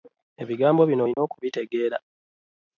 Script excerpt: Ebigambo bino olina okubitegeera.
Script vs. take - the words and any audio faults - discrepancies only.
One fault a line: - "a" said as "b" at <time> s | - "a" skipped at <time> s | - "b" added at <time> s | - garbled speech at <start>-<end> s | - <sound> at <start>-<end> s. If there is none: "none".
- dropout at 1.1-1.2 s